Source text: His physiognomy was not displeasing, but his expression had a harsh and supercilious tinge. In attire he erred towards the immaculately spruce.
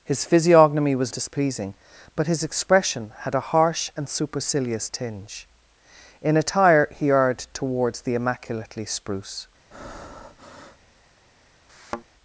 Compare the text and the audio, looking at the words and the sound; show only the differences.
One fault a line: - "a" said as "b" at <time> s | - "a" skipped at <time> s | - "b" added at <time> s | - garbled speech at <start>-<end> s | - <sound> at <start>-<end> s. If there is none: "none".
- "not" skipped at 1.1 s
- breath at 9.7-10.9 s
- thud at 11.7-12.0 s